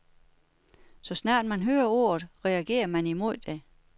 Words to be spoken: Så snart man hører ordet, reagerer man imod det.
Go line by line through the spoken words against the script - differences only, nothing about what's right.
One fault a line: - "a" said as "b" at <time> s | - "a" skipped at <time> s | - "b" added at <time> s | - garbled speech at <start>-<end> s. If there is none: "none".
none